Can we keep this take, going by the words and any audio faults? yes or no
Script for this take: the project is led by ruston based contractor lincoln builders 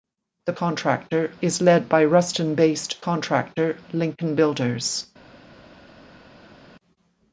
no